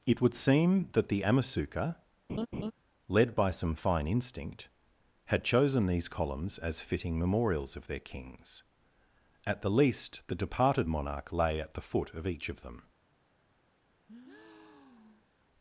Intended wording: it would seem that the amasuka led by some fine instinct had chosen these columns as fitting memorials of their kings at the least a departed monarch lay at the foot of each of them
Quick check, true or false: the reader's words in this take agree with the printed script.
false